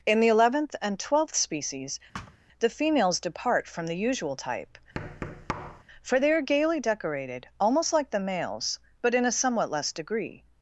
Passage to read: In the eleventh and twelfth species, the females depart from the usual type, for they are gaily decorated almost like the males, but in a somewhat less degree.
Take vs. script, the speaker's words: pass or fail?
pass